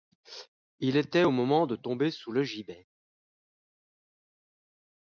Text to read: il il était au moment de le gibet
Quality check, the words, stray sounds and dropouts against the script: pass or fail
fail